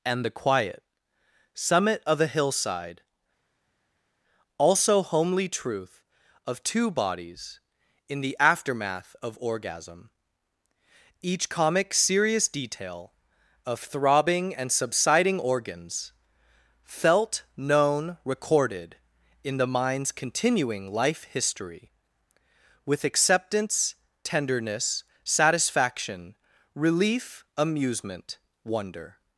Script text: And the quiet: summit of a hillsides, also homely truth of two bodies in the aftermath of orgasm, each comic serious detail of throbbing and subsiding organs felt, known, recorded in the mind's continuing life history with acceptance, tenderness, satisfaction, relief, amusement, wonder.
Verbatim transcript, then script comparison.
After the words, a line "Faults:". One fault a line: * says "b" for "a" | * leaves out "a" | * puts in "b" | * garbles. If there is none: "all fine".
And the quiet: summit of a hillside, also homely truth of two bodies in the aftermath of orgasm, each comic serious detail of throbbing and subsiding organs felt, known, recorded in the mind's continuing life history with acceptance, tenderness, satisfaction, relief, amusement, wonder.
Faults:
* says "hillside" for "hillsides"